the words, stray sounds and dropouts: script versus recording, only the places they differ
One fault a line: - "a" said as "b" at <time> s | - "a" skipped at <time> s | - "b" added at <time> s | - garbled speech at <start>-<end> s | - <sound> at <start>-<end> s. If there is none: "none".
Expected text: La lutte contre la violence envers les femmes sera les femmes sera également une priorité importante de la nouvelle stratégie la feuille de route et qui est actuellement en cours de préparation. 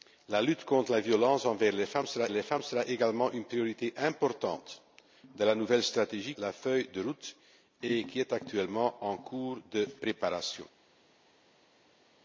none